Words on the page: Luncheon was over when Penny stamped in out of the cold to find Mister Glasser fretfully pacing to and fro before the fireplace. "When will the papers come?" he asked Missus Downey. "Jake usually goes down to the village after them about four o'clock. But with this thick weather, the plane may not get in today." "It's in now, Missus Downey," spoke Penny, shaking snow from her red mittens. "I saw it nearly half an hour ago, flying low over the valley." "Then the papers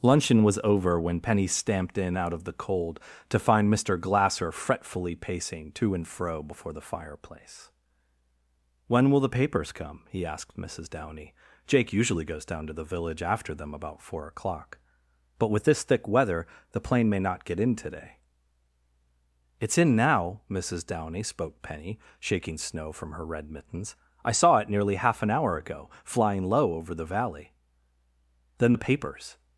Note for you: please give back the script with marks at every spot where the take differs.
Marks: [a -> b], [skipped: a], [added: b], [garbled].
Luncheon was over when Penny stamped in out of the cold to find Mister Glasser fretfully pacing to and fro before the fireplace. "When will the papers come?" he asked Missus Downey. "Jake usually goes down to the village after them about four o'clock. But with this thick weather, the plane may not get in today." "It's in now, Missus Downey," spoke Penny, shaking snow from her red mittens. "I saw it nearly half an hour ago, flying low over the valley." "Then the papers